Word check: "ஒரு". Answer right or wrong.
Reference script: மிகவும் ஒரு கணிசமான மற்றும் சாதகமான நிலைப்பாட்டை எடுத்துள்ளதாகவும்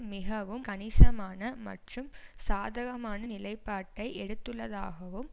wrong